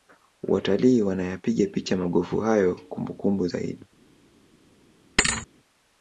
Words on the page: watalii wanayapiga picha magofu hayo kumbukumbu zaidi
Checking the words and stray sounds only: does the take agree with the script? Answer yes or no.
no